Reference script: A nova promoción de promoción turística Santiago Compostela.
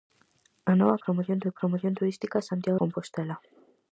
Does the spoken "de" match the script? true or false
true